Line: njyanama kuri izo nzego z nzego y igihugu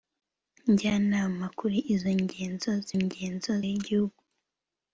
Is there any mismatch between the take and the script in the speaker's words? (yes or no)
no